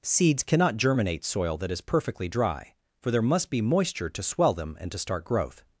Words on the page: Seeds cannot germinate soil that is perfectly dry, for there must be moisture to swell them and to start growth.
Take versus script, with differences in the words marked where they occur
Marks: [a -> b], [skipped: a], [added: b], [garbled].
Seeds cannot germinate soil that is perfectly dry, for there must be moisture to swell them and to start growth.